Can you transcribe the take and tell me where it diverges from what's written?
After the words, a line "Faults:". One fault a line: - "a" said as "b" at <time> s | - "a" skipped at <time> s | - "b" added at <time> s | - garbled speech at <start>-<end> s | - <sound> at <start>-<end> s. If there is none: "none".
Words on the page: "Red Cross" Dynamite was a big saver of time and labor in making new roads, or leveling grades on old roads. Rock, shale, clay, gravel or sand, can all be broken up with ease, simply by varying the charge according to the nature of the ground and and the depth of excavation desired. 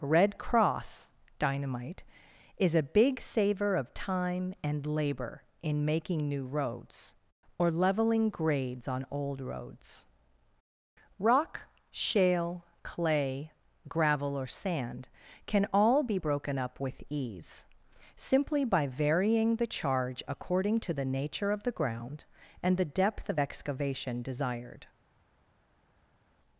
"Red Cross" Dynamite is a big saver of time and labor in making new roads, or leveling grades on old roads. Rock, shale, clay, gravel or sand, can all be broken up with ease, simply by varying the charge according to the nature of the ground and the depth of excavation desired.
Faults:
- "was" said as "is" at 2.6 s
- "and" skipped at 22.8 s